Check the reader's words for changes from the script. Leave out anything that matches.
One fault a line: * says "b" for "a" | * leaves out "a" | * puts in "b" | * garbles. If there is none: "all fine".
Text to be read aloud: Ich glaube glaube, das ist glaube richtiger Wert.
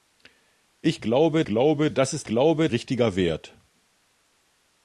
all fine